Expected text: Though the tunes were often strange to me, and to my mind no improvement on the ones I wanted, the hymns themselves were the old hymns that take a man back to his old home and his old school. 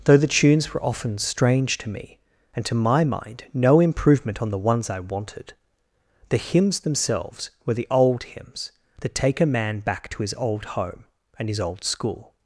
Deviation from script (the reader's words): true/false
false